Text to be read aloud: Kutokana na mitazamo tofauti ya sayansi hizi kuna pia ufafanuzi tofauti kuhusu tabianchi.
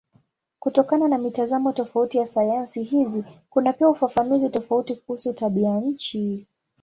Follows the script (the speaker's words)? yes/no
yes